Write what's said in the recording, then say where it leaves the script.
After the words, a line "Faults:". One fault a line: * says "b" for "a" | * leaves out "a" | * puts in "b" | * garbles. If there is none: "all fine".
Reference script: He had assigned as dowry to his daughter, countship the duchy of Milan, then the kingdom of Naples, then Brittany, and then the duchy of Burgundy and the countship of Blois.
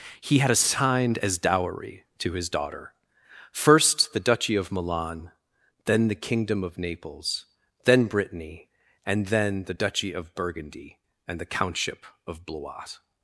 He had assigned as dowry to his daughter, first the duchy of Milan, then the kingdom of Naples, then Brittany, and then the duchy of Burgundy and the countship of Blois.
Faults:
* says "first" for "countship"